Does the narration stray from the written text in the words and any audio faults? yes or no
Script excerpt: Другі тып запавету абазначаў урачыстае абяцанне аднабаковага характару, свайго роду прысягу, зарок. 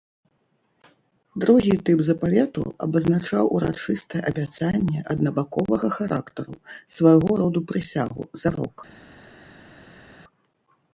no